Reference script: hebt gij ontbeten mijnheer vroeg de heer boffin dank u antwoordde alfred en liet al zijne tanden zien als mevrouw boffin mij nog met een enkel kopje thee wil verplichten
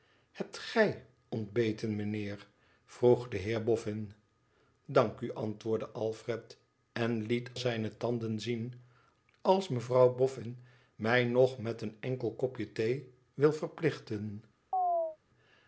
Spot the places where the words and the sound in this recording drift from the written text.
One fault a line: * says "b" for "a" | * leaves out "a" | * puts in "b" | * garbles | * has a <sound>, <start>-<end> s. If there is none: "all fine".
* leaves out "al"
* has a chirp, 14.7-15.2 s